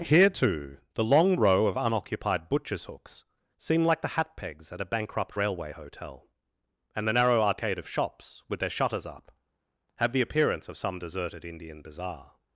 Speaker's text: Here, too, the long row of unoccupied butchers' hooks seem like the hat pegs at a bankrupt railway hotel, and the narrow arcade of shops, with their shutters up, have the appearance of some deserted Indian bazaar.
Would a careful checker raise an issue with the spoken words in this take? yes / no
no